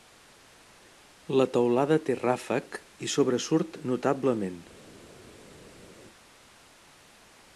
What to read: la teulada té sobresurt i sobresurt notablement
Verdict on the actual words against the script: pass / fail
fail